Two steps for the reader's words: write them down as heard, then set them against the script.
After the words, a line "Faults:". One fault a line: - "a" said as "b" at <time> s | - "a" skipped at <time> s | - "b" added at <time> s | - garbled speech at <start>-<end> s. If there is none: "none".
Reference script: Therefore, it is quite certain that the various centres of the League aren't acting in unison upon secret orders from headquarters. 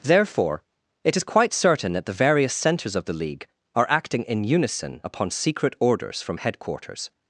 Therefore, it is quite certain that the various centres of the League are acting in unison upon secret orders from headquarters.
Faults:
- "aren't" said as "are" at 3.8 s